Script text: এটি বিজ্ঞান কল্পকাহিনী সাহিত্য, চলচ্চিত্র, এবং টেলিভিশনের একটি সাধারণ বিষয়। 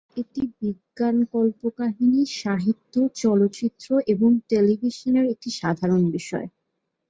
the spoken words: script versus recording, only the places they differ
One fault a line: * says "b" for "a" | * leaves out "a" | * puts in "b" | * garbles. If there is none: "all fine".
all fine